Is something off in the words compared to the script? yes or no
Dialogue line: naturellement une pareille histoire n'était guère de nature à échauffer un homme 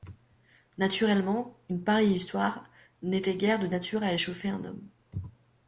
no